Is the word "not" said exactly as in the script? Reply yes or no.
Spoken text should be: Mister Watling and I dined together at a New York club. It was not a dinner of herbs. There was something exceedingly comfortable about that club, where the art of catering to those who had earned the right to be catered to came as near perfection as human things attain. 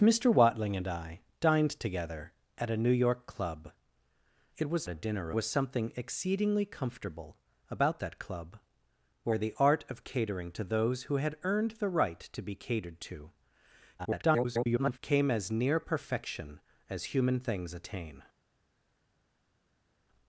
no